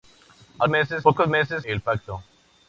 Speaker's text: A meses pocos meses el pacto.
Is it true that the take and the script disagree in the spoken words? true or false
false